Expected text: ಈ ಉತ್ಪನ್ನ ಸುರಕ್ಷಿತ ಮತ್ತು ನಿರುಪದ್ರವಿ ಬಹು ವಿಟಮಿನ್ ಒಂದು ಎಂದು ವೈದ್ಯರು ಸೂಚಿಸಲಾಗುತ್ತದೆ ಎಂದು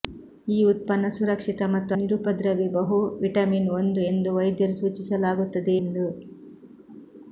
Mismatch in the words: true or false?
false